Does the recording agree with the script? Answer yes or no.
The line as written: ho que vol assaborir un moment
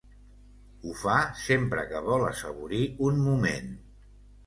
no